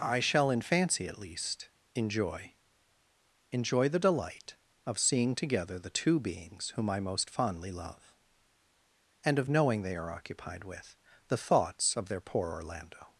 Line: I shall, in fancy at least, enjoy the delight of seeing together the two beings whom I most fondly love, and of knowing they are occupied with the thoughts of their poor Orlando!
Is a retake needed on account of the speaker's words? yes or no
yes